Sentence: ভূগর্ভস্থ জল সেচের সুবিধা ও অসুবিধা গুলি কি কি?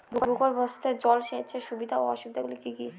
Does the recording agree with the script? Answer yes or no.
yes